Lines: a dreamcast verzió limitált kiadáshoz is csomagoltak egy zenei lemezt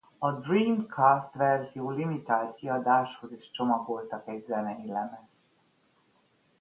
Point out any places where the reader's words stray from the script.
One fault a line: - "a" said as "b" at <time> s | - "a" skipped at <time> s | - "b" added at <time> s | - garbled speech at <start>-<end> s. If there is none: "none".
none